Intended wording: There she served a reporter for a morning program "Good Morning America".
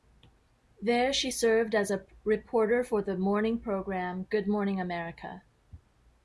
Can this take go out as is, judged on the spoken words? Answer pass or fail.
fail